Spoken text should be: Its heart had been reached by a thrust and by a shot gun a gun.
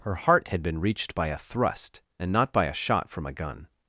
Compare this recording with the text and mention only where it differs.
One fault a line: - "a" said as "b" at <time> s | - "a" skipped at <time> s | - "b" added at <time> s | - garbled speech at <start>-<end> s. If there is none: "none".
- "Its" said as "Her" at 0.0 s
- "not" added at 2.3 s
- "gun" said as "from" at 3.1 s